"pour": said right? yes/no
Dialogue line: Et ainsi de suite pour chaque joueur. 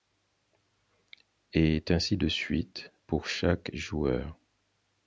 yes